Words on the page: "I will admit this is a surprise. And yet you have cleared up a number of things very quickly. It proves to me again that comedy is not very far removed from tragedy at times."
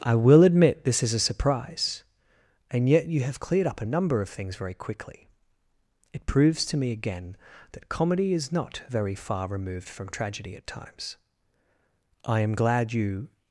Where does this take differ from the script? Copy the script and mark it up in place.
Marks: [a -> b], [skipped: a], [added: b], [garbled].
"I will admit this is a surprise. And yet you have cleared up a number of things very quickly. It proves to me again that comedy is not very far removed from tragedy at times." [added: I am glad you]